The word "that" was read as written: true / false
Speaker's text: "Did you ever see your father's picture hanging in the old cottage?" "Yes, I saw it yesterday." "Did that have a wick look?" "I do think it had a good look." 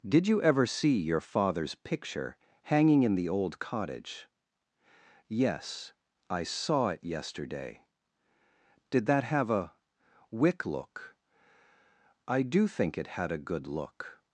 true